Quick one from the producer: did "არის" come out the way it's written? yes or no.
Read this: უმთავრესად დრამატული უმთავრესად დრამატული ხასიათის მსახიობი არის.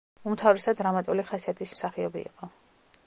no